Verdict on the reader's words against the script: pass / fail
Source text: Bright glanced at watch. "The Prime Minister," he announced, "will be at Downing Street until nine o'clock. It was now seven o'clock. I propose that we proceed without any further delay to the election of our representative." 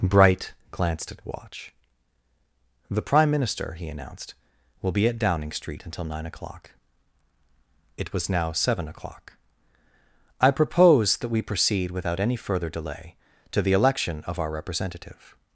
pass